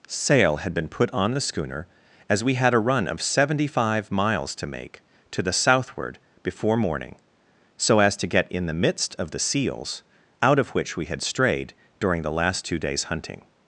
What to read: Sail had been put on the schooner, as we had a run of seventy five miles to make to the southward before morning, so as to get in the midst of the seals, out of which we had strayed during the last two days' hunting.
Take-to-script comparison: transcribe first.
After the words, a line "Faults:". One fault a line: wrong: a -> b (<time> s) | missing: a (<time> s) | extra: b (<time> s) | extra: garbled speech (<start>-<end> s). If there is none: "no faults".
Sail had been put on the schooner, as we had a run of seventy five miles to make to the southward before morning, so as to get in the midst of the seals, out of which we had strayed during the last two days' hunting.
Faults:
no faults